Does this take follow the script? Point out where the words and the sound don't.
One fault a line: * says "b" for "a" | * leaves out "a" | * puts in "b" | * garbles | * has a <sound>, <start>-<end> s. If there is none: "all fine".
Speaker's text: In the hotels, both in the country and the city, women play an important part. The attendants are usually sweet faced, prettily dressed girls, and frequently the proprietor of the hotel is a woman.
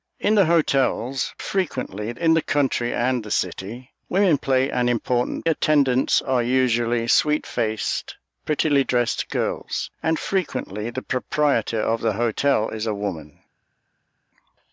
* says "frequently" for "both"
* leaves out "part The"